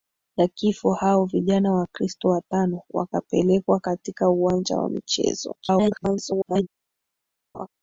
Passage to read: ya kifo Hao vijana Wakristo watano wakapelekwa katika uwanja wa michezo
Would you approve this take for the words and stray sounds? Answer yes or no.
no